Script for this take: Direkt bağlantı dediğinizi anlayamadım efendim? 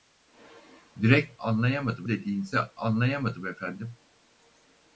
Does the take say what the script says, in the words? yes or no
no